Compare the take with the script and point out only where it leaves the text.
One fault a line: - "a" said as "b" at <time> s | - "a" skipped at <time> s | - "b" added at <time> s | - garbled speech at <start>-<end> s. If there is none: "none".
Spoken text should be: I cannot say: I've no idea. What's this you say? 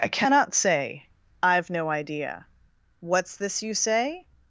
none